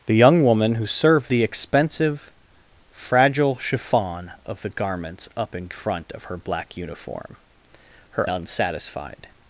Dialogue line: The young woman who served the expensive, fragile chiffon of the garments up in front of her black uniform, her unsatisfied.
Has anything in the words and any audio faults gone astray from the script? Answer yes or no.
no